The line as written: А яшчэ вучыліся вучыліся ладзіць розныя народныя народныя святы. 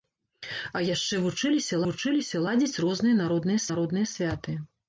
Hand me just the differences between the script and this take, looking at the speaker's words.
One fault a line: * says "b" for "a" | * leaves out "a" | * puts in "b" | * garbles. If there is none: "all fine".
all fine